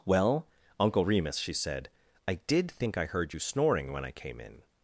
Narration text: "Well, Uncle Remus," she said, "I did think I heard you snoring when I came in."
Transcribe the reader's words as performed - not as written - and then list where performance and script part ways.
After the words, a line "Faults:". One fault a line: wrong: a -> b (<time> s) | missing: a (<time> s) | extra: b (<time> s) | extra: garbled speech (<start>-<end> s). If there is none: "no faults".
"Well, Uncle Remus," she said, "I did think I heard you snoring when I came in."
Faults:
no faults